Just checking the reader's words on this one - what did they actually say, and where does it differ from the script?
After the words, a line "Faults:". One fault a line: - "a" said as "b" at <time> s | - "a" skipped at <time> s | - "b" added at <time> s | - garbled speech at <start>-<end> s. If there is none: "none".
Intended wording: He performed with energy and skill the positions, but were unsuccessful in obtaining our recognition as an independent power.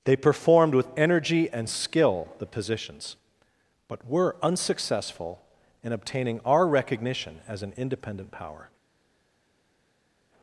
They performed with energy and skill the positions, but were unsuccessful in obtaining our recognition as an independent power.
Faults:
- "He" said as "They" at 0.0 s